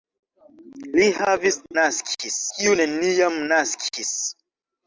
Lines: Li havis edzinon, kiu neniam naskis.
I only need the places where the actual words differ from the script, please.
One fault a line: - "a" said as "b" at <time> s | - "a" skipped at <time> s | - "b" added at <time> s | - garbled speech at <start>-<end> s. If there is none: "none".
- "edzinon" said as "naskis" at 1.8 s